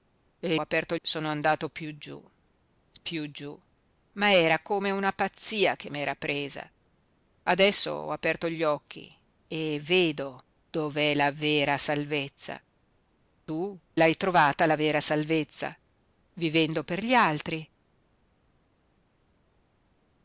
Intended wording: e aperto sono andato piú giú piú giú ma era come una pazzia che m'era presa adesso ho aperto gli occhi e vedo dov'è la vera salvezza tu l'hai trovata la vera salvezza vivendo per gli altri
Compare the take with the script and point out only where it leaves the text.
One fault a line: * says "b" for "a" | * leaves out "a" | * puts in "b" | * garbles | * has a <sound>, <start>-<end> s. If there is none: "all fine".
all fine